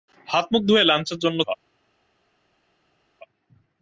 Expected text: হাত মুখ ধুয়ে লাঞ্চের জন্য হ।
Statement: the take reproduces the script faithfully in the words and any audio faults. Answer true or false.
true